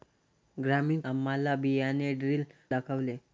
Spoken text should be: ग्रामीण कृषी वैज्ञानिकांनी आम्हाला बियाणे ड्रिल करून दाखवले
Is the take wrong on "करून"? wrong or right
wrong